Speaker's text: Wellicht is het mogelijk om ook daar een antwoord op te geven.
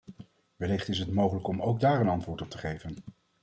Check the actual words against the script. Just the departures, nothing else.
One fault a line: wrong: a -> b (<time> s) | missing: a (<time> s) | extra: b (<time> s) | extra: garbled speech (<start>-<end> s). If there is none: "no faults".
no faults